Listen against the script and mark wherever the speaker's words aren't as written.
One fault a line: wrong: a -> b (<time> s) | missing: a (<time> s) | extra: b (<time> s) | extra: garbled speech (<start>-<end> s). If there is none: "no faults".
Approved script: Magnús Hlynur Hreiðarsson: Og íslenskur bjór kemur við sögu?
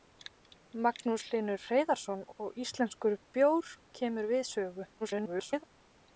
extra: garbled speech (5.0-5.6 s)